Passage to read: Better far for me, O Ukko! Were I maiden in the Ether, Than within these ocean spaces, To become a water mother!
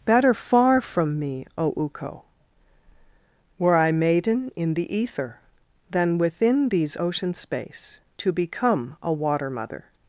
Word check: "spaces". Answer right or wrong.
wrong